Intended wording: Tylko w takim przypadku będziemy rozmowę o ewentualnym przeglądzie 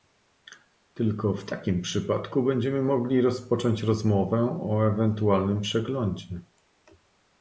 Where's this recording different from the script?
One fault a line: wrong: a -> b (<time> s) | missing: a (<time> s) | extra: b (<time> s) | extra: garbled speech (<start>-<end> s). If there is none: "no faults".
extra: mogli rozpocząć (2.8 s)